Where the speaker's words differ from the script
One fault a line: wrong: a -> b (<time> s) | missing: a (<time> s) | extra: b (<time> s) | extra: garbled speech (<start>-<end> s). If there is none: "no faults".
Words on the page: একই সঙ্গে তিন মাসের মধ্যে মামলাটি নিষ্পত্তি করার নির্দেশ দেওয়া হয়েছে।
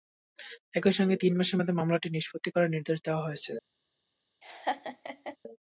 no faults